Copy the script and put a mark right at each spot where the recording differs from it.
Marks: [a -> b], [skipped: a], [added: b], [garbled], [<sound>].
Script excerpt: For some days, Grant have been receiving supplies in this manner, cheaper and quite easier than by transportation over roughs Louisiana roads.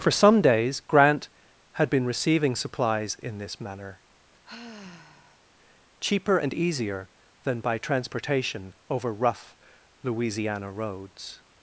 For some days, Grant [have -> had] been receiving supplies in this manner, [sigh] cheaper and [skipped: quite] easier than by transportation over [roughs -> rough] Louisiana roads.